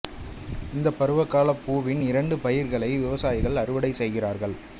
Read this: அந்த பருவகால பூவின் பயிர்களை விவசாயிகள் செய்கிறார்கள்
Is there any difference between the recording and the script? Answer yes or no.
yes